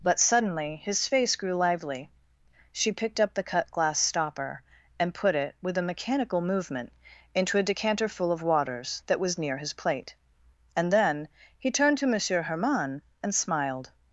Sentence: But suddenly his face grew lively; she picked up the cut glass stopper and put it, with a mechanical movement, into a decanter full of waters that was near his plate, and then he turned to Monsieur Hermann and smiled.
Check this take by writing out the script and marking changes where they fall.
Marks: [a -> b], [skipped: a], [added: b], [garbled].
But suddenly his face grew lively; she picked up the cut glass stopper and put it, with a mechanical movement, into a decanter full of waters that was near his plate, and then he turned to Monsieur Hermann and smiled.